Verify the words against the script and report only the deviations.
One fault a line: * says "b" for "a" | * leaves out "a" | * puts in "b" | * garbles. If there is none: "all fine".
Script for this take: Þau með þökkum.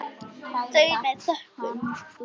all fine